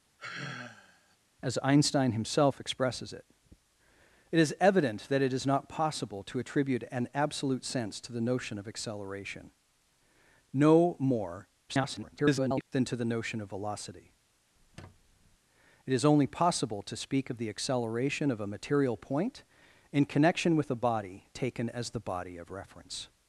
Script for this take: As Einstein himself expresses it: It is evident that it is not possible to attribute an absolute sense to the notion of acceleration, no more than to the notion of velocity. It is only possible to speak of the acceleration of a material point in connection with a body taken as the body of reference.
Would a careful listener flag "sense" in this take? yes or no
no